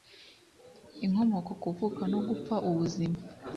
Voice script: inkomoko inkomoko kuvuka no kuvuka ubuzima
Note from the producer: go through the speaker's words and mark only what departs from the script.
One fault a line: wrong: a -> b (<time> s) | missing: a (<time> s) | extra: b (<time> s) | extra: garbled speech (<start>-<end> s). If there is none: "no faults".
missing: inkomoko (1.5 s)
wrong: kuvuka -> gupfa (2.3 s)